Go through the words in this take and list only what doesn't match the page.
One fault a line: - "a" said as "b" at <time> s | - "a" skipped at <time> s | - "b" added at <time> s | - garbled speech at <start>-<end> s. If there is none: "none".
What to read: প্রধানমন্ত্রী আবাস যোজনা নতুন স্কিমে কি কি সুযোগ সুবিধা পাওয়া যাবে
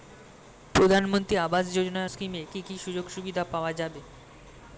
- "নতুন" skipped at 2.0 s